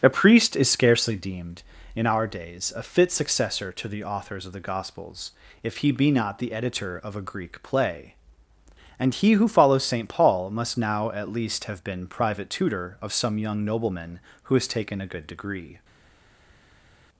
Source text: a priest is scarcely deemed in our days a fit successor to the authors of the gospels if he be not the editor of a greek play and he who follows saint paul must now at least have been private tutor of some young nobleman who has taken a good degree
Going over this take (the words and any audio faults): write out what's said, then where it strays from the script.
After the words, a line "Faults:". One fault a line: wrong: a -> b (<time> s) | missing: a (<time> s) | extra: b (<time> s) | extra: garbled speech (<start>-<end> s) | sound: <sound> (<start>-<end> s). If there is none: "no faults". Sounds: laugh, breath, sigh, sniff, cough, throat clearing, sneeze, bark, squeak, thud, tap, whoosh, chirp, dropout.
a priest is scarcely deemed in our days a fit successor to the authors of the gospels if he be not the editor of a greek play and he who follows saint paul must now at least have been private tutor of some young nobleman who has taken a good degree
Faults:
no faults